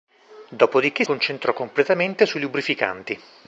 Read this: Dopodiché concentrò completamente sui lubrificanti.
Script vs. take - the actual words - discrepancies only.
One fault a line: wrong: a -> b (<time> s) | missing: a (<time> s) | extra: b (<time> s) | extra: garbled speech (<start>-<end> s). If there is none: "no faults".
no faults